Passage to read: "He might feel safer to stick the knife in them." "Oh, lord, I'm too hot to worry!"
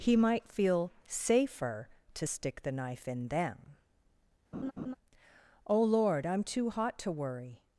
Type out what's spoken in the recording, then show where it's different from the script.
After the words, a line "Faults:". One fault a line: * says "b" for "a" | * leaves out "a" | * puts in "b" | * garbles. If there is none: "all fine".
"He might feel safer to stick the knife in them." "Oh, lord, I'm too hot to worry!"
Faults:
all fine